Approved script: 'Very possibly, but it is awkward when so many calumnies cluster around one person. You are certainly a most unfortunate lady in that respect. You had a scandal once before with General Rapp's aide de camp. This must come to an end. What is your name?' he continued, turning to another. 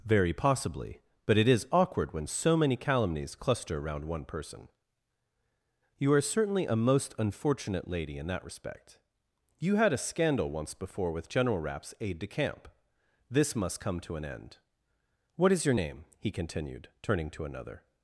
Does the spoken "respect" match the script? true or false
true